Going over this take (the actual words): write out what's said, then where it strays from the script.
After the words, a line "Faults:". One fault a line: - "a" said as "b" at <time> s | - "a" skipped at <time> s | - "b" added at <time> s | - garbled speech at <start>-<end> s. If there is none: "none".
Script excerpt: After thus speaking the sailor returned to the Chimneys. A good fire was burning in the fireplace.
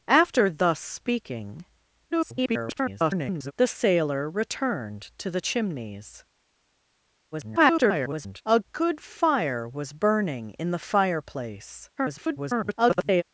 After thus speaking [garbled] the sailor returned to the Chimneys. [garbled] A good fire was burning in the fireplace. [garbled]
Faults:
- garbled speech at 2.1-3.5 s
- garbled speech at 7.3-8.4 s
- garbled speech at 12.0-13.2 s